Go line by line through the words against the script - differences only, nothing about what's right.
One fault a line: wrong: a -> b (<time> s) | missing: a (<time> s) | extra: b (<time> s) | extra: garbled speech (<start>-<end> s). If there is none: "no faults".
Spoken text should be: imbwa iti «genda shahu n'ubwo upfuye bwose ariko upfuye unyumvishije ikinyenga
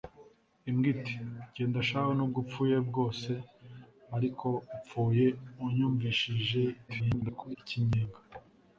extra: garbled speech (6.9-7.6 s)